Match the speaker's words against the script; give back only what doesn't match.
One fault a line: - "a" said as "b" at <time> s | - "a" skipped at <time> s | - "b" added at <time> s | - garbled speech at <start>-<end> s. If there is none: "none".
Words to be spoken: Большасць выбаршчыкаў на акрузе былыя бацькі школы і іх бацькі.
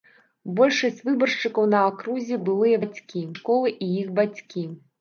none